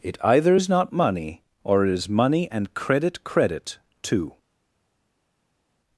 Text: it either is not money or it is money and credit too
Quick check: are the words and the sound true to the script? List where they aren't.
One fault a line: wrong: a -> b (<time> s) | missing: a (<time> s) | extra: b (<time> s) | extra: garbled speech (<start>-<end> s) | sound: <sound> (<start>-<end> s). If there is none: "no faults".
extra: credit (3.2 s)